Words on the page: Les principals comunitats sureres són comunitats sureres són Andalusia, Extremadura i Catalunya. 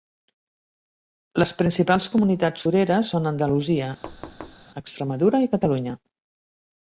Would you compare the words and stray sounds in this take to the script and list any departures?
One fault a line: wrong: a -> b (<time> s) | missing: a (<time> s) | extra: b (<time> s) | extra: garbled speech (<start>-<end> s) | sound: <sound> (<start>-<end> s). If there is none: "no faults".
missing: comunitats sureres són (3.3 s)
sound: thud (4.0-4.7 s)